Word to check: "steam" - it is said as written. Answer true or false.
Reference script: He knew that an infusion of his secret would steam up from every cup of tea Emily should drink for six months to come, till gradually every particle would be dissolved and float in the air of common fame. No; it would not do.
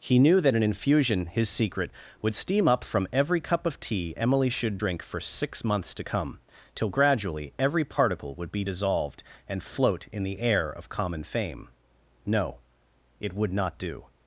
true